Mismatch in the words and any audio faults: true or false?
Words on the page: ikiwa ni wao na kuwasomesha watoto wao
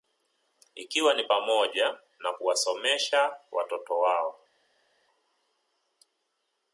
true